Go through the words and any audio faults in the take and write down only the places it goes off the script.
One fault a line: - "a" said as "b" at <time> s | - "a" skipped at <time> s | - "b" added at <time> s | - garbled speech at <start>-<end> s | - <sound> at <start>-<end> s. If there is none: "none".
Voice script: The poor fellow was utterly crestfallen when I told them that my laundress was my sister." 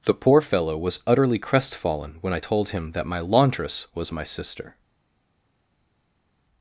- "them" said as "him" at 2.7 s